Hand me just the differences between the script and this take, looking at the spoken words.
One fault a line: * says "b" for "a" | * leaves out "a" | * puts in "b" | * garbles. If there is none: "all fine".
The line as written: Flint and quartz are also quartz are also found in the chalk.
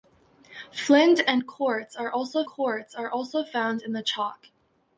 all fine